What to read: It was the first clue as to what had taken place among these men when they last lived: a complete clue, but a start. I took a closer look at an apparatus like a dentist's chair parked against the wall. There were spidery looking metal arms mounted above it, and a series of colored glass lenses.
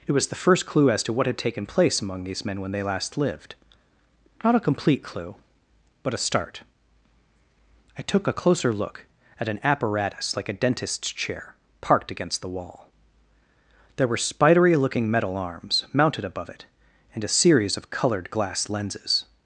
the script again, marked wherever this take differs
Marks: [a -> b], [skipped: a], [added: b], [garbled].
It was the first clue as to what had taken place among these men when they last lived: [added: not] a complete clue, but a start. I took a closer look at an apparatus like a dentist's chair parked against the wall. There were spidery looking metal arms mounted above it, and a series of colored glass lenses.